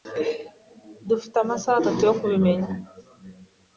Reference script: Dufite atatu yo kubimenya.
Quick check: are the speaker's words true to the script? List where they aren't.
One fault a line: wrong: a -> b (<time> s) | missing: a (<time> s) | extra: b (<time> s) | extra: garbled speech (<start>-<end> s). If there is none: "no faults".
extra: amasaha (1.4 s)